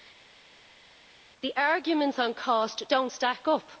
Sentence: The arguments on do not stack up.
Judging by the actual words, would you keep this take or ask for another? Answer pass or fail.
fail